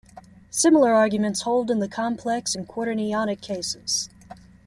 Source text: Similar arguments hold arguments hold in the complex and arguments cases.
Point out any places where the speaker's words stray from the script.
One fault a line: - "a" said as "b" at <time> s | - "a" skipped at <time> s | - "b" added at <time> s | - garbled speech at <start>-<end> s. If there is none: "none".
- "arguments hold" skipped at 1.7 s
- "arguments" said as "quaternionic" at 2.7 s